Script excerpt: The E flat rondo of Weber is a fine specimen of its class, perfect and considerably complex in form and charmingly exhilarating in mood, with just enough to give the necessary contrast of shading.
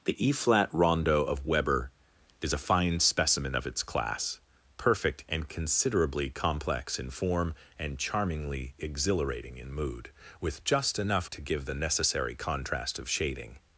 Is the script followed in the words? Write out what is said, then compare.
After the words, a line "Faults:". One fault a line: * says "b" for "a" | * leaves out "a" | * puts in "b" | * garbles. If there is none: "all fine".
The E flat rondo of Weber is a fine specimen of its class, perfect and considerably complex in form and charmingly exhilarating in mood, with just enough to give the necessary contrast of shading.
Faults:
all fine